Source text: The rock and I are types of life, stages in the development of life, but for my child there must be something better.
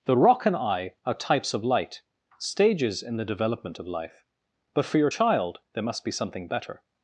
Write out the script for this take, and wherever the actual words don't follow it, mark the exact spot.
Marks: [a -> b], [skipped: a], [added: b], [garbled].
The rock and I are types of [life, -> light] stages in the development of life, but for [my -> your] child there must be something better.